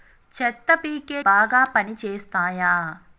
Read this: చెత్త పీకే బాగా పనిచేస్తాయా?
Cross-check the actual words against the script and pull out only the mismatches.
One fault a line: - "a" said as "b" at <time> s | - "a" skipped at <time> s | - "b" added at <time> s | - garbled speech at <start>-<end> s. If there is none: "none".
none